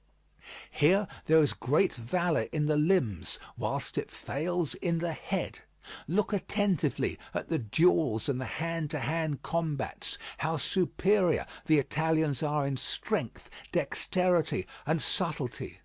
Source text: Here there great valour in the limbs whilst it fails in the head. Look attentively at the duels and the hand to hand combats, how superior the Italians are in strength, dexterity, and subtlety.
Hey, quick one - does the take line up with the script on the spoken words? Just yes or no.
no